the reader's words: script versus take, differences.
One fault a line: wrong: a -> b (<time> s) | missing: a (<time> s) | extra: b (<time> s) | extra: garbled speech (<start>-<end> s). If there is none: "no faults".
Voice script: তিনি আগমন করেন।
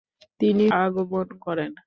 no faults